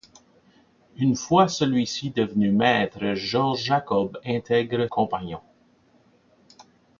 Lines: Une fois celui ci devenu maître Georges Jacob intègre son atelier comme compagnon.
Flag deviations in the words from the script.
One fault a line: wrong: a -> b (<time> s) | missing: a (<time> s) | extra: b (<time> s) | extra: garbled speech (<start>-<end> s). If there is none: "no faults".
missing: son atelier comme (4.9 s)